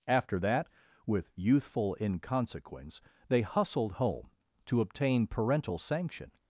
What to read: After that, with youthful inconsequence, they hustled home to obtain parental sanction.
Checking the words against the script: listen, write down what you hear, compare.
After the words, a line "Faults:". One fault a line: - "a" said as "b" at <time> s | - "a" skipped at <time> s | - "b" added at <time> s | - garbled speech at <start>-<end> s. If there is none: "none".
After that, with youthful inconsequence, they hustled home to obtain parental sanction.
Faults:
none